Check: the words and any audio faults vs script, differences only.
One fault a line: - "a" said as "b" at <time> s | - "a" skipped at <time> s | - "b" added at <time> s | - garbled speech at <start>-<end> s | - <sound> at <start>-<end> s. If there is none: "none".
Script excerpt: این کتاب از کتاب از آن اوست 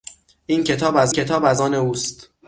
none